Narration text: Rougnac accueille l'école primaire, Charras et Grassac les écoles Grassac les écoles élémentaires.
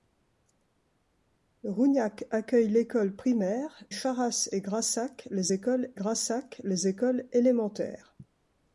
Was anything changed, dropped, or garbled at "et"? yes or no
no